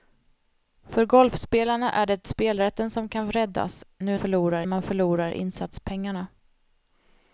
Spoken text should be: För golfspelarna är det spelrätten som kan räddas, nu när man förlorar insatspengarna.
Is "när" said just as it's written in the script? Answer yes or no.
no